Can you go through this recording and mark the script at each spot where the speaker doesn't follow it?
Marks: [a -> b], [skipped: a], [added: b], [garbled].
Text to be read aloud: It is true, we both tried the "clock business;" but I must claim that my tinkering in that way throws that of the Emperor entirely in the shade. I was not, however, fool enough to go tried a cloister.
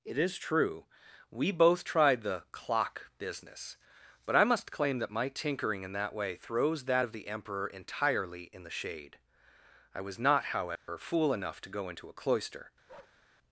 It is true, we both tried the "clock business;" but I must claim that my tinkering in that way throws that of the Emperor entirely in the shade. I was not, however, fool enough to go [tried -> into] a cloister.